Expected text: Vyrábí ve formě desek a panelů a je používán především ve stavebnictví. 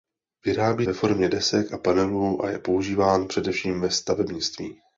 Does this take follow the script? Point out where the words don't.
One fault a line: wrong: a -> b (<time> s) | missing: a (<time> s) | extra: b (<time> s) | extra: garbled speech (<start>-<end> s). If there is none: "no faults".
no faults